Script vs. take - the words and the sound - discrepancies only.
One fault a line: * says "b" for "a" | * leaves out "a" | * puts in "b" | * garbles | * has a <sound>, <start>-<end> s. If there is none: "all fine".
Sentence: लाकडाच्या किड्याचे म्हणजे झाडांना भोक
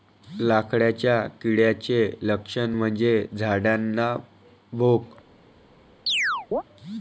* puts in "लक्षण"
* has a chirp, 6.1-6.6 s